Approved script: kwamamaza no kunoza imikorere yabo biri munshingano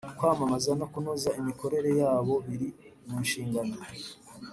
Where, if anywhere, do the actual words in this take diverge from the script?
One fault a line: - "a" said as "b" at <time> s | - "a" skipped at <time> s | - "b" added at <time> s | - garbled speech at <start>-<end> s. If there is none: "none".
none